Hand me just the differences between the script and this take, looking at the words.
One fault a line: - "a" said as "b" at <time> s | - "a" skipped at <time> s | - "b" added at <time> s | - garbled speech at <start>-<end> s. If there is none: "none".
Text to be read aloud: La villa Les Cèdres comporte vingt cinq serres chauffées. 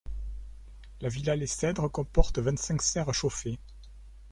none